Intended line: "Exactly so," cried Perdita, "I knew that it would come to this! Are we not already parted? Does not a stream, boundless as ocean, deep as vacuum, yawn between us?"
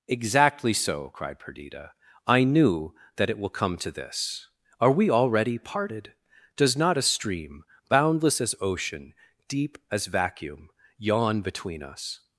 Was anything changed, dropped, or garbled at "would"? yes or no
yes